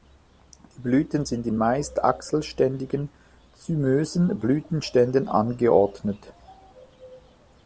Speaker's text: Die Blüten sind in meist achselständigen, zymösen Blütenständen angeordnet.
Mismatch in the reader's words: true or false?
false